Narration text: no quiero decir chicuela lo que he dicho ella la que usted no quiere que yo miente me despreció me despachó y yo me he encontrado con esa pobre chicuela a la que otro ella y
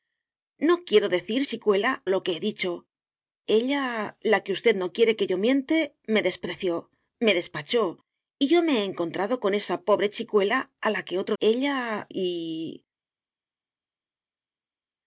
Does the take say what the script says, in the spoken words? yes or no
yes